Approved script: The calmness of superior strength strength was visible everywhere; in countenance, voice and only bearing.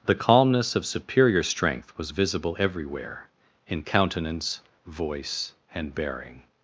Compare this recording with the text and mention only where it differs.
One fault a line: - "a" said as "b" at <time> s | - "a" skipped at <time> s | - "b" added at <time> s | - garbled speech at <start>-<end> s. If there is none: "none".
- "strength" skipped at 1.9 s
- "only" skipped at 5.9 s